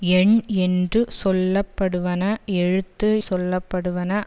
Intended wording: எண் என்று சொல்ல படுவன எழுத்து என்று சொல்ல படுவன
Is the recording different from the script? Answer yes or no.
yes